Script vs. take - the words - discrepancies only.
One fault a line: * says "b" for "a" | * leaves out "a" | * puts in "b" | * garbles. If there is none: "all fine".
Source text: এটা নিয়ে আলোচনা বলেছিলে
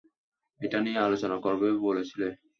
* puts in "করবে"